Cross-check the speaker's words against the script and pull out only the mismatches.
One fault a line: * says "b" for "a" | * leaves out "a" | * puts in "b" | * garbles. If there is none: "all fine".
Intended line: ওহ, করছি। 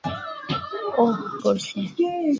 all fine